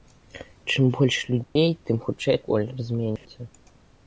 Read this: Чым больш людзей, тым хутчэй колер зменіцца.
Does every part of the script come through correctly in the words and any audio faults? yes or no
no